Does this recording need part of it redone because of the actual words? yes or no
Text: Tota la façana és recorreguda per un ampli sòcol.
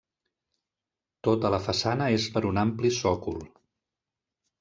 yes